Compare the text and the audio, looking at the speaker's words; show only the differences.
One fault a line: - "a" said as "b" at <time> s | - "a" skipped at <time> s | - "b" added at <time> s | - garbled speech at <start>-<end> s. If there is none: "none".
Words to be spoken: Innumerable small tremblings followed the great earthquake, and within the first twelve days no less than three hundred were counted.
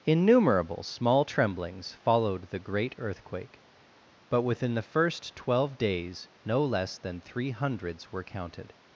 - "and" said as "but" at 4.3 s
- "hundred" said as "hundreds" at 7.5 s